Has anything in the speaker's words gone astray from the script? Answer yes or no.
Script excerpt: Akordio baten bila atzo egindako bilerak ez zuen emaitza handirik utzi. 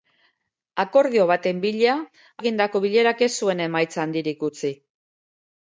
yes